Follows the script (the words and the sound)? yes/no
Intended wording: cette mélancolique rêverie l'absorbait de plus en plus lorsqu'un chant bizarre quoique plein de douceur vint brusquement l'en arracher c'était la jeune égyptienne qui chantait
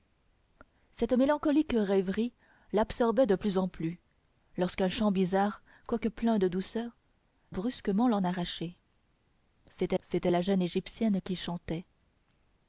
no